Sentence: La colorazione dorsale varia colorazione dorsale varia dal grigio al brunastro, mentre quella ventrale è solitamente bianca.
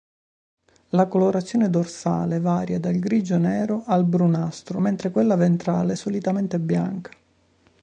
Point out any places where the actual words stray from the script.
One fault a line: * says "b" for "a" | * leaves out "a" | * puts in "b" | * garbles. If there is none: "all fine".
* leaves out "colorazione dorsale varia"
* puts in "nero"